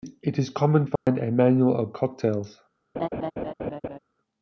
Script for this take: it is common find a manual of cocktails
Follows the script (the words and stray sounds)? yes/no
no